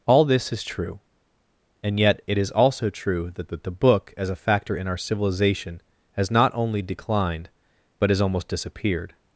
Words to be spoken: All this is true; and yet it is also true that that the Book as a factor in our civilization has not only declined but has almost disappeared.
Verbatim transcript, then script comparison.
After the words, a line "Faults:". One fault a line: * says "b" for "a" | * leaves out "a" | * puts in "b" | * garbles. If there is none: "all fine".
All this is true; and yet it is also true that that the Book as a factor in our civilization has not only declined but has almost disappeared.
Faults:
all fine